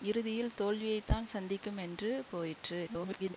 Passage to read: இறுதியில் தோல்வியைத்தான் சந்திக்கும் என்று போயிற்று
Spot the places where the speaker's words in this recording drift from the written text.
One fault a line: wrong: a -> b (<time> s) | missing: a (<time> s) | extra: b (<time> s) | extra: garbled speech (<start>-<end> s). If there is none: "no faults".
extra: garbled speech (2.9-3.3 s)